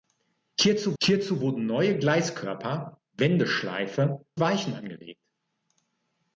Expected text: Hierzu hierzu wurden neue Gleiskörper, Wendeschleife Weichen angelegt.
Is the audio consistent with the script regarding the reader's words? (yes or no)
yes